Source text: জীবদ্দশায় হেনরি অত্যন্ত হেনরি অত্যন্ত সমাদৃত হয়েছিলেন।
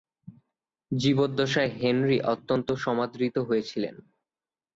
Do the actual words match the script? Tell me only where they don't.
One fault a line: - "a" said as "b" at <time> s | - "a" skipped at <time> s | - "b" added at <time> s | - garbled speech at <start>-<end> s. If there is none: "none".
- "হেনরি অত্যন্ত" skipped at 2.7 s